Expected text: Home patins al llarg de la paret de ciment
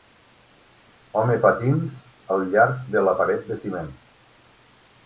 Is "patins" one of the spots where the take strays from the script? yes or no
no